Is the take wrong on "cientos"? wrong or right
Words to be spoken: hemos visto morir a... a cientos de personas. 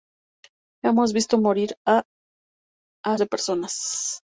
wrong